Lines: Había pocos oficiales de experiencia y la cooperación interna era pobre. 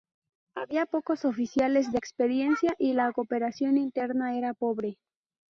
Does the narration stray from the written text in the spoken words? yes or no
no